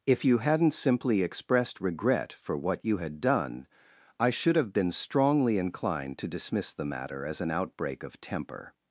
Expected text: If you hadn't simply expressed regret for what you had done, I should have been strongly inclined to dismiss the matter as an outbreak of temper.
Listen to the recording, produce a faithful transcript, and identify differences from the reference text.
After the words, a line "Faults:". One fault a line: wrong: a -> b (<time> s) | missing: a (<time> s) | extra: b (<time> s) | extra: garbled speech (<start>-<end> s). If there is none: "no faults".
If you hadn't simply expressed regret for what you had done, I should have been strongly inclined to dismiss the matter as an outbreak of temper.
Faults:
no faults